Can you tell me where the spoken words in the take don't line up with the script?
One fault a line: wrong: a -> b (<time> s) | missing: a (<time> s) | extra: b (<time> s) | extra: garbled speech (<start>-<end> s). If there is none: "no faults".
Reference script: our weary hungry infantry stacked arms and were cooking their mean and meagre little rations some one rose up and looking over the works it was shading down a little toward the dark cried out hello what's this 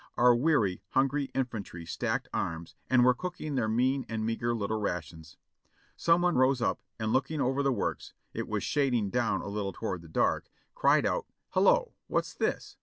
no faults